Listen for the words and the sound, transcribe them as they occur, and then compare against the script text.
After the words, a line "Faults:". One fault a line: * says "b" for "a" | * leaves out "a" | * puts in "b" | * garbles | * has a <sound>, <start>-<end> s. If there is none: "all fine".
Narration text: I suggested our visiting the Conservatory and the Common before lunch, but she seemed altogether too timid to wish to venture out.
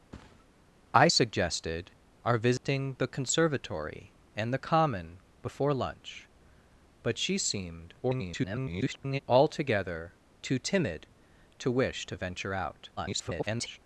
I suggested our visiting the Conservatory and the Common before lunch, but she seemed [garbled] altogether too timid to wish to venture out. [garbled]
Faults:
* has a thud, 0.1-0.5 s
* has a dropout, 2.6-2.6 s
* garbles
* garbles